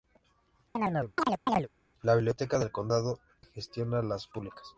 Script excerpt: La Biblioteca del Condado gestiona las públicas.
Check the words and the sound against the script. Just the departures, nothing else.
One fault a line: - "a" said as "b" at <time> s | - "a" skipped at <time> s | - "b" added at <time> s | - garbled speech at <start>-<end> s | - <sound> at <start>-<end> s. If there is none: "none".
- chirp at 0.7-1.7 s